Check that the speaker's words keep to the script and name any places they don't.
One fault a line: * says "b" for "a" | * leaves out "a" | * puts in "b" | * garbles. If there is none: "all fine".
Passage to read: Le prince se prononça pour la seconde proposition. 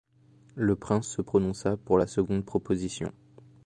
all fine